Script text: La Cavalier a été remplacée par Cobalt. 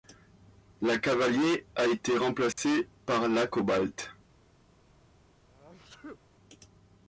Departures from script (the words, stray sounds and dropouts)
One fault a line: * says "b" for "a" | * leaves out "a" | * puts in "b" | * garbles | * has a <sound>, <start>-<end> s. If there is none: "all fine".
* has a dropout, 2.5-2.6 s
* puts in "la"
* has a sneeze, 5.5-6.2 s